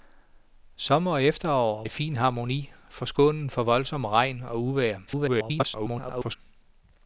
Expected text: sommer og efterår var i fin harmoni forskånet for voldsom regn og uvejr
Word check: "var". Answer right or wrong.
wrong